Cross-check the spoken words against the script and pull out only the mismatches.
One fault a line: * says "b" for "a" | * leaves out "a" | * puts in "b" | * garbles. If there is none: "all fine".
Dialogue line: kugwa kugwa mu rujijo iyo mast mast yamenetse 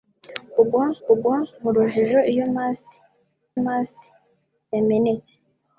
all fine